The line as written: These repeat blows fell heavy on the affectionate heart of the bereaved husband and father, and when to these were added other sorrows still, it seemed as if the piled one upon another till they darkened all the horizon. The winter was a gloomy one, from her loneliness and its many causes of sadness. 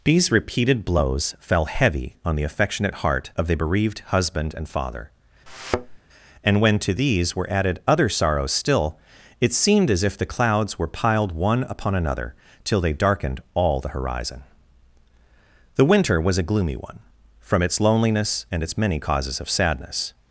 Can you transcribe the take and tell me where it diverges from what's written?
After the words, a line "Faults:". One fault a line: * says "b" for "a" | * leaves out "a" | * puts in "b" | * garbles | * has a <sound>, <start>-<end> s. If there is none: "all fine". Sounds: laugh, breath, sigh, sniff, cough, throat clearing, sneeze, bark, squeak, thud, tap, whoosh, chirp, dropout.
These repeated blows fell heavy on the affectionate heart of the bereaved husband and father, and when to these were added other sorrows still, it seemed as if the clouds were piled one upon another till they darkened all the horizon. The winter was a gloomy one, from its loneliness and its many causes of sadness.
Faults:
* says "repeated" for "repeat"
* has a thud, 5.5-6.0 s
* puts in "clouds were"
* says "its" for "her"